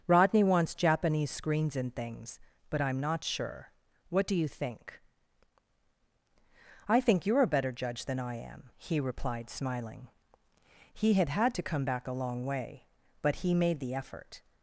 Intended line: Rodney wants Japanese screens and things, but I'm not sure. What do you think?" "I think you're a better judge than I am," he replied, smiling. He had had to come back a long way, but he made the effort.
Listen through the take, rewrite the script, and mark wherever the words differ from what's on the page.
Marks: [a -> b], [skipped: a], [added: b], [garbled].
Rodney wants Japanese screens and things, but I'm not sure. What do you think?" "I think you're a better judge than I am," he replied, smiling. He had had to come back a long way, but he made the effort.